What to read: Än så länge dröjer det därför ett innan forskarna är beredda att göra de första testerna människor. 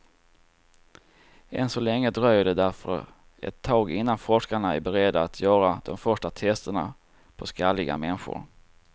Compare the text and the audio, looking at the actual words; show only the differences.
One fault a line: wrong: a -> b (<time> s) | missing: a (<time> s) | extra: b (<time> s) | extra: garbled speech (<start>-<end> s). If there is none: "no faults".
extra: tag (3.6 s)
extra: på skalliga (7.4 s)